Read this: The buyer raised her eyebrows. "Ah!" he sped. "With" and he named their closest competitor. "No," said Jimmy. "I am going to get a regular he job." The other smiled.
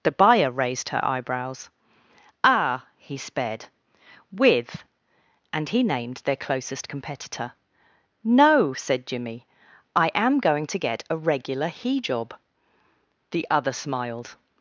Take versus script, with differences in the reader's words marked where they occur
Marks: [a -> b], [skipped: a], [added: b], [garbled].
The buyer raised her eyebrows. "Ah!" he sped. "With" and he named their closest competitor. "No," said Jimmy. "I am going to get a regular he job." The other smiled.